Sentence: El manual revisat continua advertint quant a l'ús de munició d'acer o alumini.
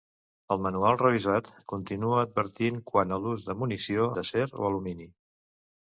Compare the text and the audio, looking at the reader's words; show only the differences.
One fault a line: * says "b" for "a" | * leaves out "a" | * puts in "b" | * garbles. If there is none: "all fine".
all fine